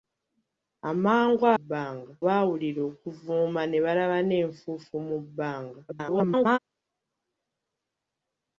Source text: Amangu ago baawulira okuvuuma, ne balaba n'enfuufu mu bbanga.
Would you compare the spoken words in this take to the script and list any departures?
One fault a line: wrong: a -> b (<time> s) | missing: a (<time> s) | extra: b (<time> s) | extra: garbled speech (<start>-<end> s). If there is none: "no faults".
wrong: ago -> bbanga (1.6 s)
extra: garbled speech (5.9-6.6 s)